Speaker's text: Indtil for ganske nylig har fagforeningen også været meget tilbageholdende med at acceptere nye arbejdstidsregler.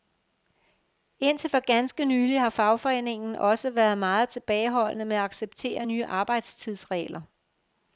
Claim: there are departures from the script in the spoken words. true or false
false